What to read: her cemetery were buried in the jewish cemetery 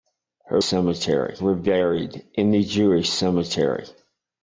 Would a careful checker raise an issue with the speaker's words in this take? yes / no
no